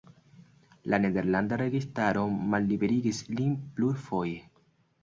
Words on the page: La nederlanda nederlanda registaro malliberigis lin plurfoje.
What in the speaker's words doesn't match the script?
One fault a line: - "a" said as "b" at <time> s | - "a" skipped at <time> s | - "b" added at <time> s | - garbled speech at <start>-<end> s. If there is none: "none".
- "nederlanda" skipped at 1.6 s